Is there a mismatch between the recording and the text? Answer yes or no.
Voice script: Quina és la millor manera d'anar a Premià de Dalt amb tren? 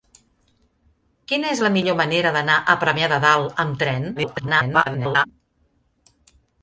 yes